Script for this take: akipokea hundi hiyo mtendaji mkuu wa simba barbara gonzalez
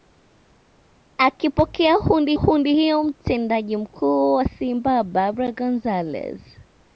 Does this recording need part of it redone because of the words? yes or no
yes